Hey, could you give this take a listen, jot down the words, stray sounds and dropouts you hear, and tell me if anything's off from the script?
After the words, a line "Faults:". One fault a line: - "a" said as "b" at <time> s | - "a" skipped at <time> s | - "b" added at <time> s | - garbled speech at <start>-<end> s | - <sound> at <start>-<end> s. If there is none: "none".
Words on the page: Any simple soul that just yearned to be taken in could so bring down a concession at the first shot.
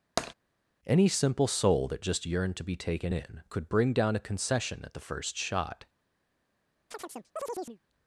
Any simple soul that just yearned to be taken in could bring down a concession at the first shot.
Faults:
- tap at 0.2-0.3 s
- "so" skipped at 3.7 s
- chirp at 6.9-7.8 s